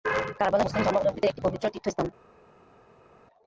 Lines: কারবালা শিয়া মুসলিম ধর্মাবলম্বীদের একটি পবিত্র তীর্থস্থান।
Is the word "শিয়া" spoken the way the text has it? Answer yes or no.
no